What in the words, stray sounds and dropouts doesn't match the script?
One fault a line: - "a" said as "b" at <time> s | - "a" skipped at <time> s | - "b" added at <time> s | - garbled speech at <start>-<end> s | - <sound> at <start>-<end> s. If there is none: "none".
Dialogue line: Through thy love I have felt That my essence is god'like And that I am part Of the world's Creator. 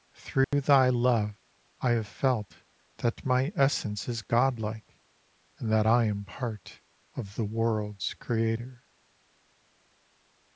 - dropout at 0.4-0.5 s